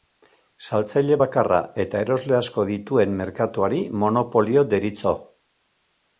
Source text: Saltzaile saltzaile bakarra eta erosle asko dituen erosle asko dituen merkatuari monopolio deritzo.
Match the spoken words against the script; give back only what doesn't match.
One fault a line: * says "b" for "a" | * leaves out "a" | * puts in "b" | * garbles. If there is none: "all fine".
* leaves out "saltzaile"
* leaves out "erosle asko dituen"